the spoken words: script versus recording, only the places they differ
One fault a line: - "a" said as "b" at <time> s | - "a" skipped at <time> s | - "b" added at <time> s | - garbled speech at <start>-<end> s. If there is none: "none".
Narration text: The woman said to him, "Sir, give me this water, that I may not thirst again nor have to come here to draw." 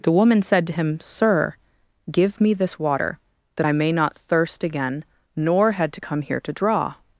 - "have" said as "had" at 5.7 s